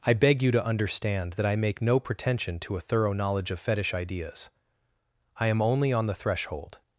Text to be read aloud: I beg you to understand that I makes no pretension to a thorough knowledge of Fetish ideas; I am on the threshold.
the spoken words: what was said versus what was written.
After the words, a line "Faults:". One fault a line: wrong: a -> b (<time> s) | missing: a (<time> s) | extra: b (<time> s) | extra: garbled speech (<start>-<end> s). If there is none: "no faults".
I beg you to understand that I make no pretension to a thorough knowledge of Fetish ideas; I am only on the threshold.
Faults:
wrong: makes -> make (1.6 s)
extra: only (5.6 s)